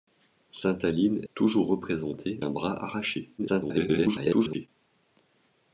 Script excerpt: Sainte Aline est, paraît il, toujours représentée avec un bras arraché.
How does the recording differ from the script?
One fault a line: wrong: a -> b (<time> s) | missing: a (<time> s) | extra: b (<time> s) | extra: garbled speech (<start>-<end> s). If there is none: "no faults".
missing: est paraît il (1.2 s)
missing: avec (2.4 s)
extra: garbled speech (3.4-4.7 s)